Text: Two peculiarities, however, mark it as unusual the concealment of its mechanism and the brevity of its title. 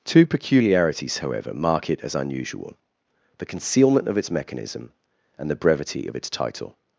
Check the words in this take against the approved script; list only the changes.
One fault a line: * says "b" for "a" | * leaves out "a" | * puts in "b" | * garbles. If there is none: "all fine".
all fine